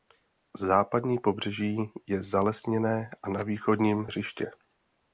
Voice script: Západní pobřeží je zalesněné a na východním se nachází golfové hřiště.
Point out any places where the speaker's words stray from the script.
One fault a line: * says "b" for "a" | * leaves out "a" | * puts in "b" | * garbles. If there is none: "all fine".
* leaves out "se nachází golfové"